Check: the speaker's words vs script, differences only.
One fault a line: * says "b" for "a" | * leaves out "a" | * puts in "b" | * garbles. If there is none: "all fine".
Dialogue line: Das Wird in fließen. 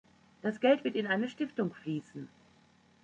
* puts in "Geld"
* puts in "eine Stiftung"